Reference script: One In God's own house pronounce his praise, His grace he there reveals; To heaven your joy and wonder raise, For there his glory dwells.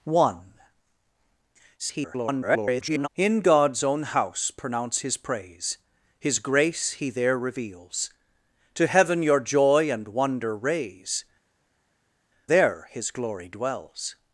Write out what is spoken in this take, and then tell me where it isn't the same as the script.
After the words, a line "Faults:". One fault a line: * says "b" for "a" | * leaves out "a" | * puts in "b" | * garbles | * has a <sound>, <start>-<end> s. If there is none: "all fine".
One [garbled] In God's own house pronounce his praise, His grace he there reveals; To heaven your joy and wonder raise, There his glory dwells.
Faults:
* garbles
* leaves out "For"